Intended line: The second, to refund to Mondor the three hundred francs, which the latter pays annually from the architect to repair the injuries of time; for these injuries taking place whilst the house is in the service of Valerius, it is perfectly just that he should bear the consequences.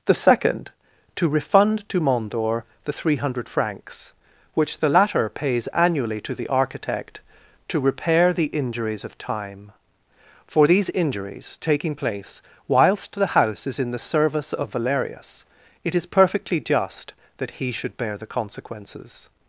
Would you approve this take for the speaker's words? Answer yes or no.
no